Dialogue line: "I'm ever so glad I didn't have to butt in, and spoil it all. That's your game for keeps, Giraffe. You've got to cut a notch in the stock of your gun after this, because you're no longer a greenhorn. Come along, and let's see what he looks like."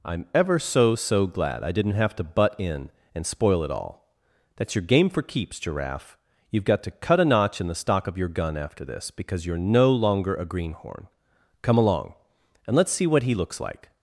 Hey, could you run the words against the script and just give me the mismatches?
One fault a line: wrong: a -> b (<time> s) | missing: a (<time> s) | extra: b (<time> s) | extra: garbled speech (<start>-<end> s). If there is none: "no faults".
extra: so (0.9 s)